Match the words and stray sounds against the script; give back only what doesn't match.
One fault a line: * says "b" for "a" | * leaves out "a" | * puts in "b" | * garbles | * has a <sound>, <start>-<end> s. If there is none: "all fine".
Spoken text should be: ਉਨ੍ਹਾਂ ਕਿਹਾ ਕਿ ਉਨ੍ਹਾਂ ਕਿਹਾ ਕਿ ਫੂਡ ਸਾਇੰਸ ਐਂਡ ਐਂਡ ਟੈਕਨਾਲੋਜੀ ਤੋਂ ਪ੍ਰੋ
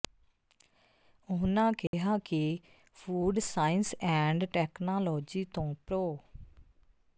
* has a dropout, 1.9-1.9 s
* leaves out "ਉਨ੍ਹਾਂ ਕਿਹਾ ਕਿ"
* leaves out "ਐਂਡ"